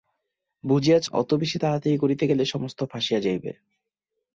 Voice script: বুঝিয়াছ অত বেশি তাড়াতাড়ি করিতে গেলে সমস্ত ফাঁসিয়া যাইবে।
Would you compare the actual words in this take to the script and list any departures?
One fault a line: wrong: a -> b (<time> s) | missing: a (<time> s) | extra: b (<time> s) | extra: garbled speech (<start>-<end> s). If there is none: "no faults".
no faults